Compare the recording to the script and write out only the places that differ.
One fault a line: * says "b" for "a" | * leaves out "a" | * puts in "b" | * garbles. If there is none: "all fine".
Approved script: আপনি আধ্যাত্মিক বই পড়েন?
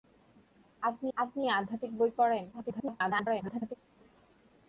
* puts in "আপনি"
* garbles